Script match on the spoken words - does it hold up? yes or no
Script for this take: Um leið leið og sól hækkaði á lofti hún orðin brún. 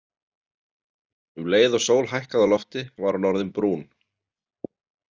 no